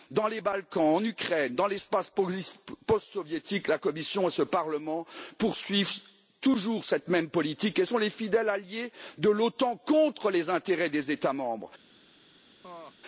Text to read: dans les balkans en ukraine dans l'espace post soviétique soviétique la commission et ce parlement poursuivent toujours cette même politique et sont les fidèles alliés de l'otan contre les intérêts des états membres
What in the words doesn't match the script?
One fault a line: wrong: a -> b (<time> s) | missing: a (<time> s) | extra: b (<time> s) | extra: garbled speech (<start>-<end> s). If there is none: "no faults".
missing: soviétique (3.7 s)